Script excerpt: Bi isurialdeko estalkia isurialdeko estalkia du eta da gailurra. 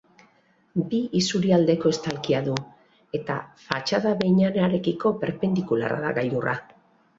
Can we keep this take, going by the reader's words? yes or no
no